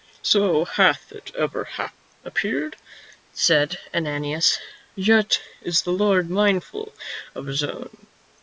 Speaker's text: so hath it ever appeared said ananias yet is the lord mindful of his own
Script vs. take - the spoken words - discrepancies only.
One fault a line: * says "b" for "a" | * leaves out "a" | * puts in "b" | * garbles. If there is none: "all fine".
all fine